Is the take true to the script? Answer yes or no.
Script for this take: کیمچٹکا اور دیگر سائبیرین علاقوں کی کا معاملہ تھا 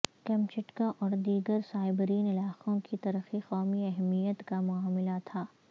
no